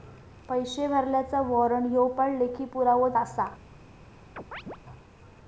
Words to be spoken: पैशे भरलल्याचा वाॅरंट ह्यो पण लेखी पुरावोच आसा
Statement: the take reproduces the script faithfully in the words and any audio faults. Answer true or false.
false